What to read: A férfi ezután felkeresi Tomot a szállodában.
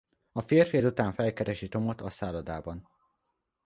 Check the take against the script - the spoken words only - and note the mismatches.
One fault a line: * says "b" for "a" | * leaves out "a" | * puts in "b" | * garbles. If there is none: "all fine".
all fine